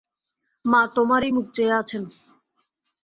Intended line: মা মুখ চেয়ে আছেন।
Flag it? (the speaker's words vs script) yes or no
yes